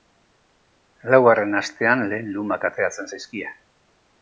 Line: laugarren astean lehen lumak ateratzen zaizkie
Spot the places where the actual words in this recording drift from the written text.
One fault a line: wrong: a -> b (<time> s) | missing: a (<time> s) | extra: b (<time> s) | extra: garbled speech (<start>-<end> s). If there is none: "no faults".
no faults